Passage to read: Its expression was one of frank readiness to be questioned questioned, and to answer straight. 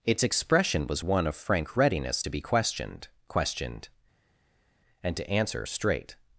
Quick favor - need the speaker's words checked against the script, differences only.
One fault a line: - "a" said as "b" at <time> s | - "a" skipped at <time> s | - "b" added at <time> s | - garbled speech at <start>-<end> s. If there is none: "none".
none